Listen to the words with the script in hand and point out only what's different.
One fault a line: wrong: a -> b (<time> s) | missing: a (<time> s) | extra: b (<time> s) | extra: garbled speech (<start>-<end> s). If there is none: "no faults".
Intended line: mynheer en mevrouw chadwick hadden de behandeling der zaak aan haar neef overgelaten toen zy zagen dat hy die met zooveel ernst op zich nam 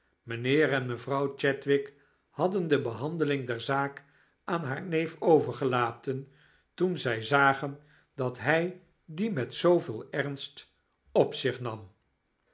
no faults